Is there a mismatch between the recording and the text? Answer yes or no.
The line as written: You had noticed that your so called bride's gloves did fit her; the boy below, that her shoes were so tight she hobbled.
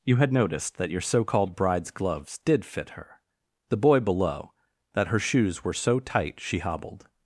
no